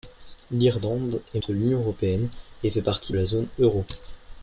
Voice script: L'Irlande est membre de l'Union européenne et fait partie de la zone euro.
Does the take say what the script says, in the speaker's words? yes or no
no